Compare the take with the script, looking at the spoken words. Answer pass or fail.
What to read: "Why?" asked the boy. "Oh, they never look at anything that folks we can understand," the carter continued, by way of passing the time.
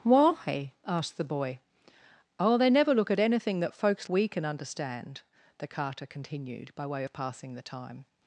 pass